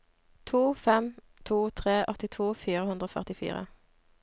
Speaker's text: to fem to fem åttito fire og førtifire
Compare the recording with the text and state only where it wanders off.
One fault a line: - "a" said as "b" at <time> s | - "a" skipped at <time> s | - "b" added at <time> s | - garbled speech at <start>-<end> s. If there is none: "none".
- "fem" said as "tre" at 1.8 s
- "hundre" added at 2.9 s